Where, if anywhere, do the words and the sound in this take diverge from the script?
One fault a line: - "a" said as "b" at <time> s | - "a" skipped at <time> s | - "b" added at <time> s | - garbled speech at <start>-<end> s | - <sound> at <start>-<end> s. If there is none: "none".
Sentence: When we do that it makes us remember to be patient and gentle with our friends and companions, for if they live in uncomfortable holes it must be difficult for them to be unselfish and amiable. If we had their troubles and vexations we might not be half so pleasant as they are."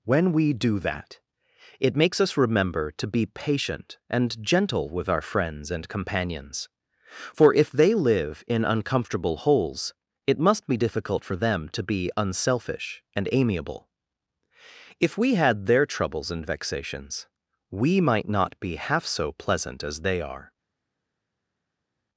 none